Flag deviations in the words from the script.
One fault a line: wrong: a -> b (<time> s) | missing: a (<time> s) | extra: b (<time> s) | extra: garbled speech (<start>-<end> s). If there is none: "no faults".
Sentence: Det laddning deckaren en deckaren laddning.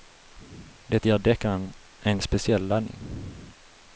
wrong: laddning -> ger (1.0 s)
wrong: deckaren -> speciell (2.2 s)